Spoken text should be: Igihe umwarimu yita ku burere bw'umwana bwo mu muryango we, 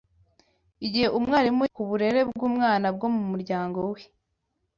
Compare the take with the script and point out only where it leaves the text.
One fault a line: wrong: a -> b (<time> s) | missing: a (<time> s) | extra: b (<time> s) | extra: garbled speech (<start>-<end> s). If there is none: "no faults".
missing: yita (1.6 s)